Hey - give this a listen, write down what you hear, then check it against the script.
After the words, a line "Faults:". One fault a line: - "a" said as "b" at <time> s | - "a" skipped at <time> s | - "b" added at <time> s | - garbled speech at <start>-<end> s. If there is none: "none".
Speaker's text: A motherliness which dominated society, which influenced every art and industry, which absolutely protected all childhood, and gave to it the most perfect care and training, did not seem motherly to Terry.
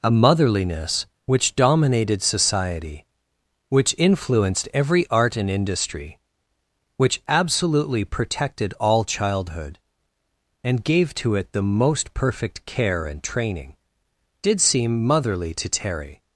A motherliness which dominated society, which influenced every art and industry, which absolutely protected all childhood, and gave to it the most perfect care and training, did seem motherly to Terry.
Faults:
- "not" skipped at 14.6 s